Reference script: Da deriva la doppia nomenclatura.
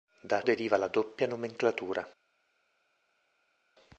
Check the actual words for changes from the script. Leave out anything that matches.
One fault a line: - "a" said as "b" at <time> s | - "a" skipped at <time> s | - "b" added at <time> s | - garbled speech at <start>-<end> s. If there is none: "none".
none